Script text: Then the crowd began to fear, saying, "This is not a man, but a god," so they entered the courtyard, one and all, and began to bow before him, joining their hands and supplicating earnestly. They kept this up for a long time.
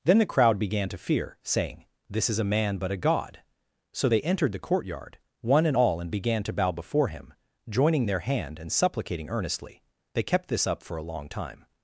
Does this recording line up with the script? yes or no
no